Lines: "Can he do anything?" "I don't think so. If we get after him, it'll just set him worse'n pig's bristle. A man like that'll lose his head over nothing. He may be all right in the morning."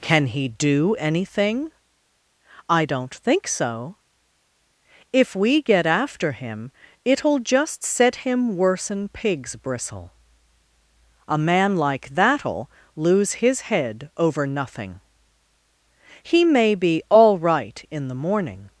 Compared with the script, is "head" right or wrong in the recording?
right